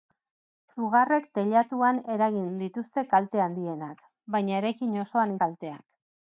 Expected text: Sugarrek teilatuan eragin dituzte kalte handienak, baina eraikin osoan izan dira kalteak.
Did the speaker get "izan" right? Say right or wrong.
wrong